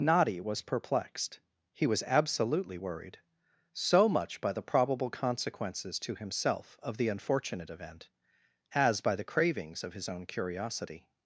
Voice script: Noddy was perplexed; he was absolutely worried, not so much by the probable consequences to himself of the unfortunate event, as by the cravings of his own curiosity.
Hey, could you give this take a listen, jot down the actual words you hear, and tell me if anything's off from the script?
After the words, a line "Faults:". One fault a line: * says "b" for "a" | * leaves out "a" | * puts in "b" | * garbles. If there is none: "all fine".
Noddy was perplexed; he was absolutely worried, so much by the probable consequences to himself of the unfortunate event, as by the cravings of his own curiosity.
Faults:
* leaves out "not"